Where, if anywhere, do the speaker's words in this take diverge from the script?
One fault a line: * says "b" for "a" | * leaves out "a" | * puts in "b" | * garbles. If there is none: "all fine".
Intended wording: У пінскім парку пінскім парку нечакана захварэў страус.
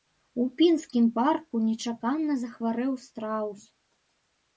* leaves out "пінскім парку"